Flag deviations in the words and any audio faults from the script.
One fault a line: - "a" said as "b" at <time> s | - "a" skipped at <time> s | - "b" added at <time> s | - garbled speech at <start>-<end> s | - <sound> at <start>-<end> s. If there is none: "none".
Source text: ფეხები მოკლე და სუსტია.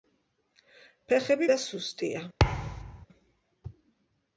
- "მოკლე" skipped at 1.5 s
- thud at 2.4-3.1 s